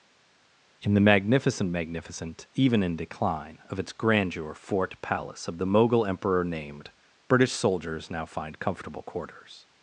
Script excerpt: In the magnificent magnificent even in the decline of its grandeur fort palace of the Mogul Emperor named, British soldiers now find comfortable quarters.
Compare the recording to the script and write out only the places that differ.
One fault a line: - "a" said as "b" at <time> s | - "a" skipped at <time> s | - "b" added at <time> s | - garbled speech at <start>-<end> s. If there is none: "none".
- "the" skipped at 2.9 s